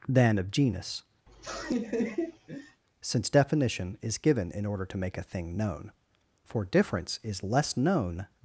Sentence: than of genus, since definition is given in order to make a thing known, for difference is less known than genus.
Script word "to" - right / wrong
right